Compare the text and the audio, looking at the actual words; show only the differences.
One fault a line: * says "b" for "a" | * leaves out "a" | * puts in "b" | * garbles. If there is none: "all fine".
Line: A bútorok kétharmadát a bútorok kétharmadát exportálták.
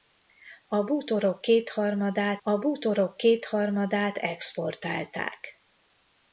all fine